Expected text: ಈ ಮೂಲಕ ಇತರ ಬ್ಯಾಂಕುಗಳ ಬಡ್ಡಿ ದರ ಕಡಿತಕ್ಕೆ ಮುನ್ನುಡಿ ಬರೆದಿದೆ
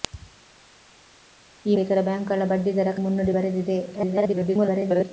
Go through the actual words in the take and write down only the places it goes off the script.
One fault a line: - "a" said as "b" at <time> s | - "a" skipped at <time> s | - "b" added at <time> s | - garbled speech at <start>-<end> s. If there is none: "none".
- "ಮೂಲಕ" skipped at 1.8 s
- "ಕಡಿತಕ್ಕೆ" skipped at 2.9 s
- garbled speech at 3.9-5.1 s